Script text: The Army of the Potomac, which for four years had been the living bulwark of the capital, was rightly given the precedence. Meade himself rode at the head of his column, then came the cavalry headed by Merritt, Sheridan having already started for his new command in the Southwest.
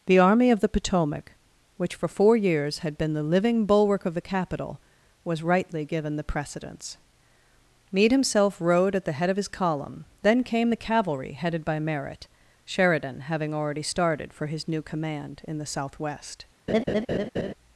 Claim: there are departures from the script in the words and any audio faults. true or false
true